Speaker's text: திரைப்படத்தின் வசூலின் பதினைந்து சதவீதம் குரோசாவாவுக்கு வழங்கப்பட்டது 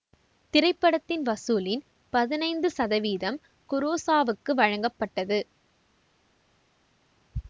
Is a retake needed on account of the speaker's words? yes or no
no